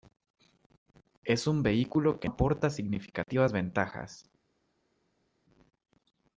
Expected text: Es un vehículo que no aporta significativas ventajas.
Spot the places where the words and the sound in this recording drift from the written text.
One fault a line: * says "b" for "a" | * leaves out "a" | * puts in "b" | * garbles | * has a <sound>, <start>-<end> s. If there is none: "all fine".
* leaves out "no"